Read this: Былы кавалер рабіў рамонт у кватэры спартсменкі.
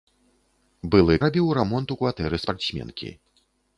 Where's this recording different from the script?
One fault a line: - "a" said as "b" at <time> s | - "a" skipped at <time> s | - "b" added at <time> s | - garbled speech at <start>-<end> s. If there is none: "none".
- "кавалер" skipped at 1.2 s